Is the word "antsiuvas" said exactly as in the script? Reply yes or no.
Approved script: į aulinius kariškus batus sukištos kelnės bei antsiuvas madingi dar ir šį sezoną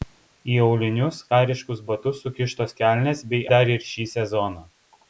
no